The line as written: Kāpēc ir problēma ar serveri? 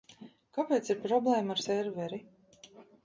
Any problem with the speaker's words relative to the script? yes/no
no